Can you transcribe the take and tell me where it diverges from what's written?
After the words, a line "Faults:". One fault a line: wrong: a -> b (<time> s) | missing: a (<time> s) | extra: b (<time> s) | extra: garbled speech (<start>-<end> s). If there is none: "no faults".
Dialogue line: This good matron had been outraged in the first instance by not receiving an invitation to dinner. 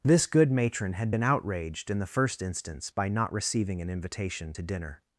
This good matron had been outraged in the first instance by not receiving an invitation to dinner.
Faults:
no faults